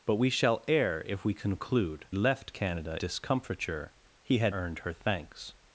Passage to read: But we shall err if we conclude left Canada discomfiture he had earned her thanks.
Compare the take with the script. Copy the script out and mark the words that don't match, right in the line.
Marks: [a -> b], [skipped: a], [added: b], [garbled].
But we shall err if we conclude left Canada discomfiture he had earned her thanks.